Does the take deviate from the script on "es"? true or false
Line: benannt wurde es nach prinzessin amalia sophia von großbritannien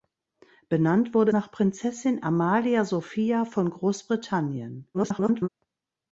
true